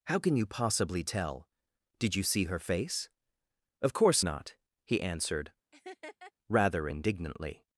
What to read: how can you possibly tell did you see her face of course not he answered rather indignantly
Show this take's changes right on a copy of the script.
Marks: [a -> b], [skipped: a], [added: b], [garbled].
how can you possibly tell did you see her face of course not he answered rather indignantly